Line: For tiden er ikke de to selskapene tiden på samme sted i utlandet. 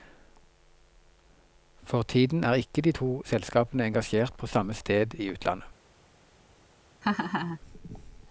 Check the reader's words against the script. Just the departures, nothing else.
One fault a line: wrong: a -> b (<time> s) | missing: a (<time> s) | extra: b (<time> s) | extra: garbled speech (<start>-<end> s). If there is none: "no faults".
wrong: tiden -> engasjert (3.9 s)